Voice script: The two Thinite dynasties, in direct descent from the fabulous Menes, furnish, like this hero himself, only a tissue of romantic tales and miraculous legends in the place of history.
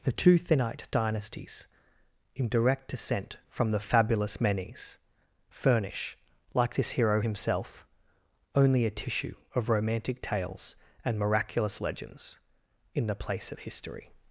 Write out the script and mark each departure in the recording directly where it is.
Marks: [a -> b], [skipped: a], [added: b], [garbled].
The two Thinite dynasties, in direct descent from the fabulous Menes, furnish, like this hero himself, only a tissue of romantic tales and miraculous legends in the place of history.